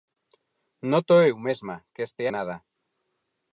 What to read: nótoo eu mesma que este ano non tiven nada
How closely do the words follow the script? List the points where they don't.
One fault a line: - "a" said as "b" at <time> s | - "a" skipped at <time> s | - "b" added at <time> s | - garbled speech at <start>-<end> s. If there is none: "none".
- "ano non tiven" skipped at 2.2 s